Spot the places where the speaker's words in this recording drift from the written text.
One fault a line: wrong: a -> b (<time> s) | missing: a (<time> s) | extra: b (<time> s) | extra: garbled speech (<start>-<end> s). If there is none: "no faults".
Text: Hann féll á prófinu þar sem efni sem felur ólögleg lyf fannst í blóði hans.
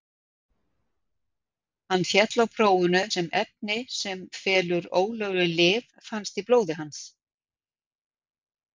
missing: þar (3.0 s)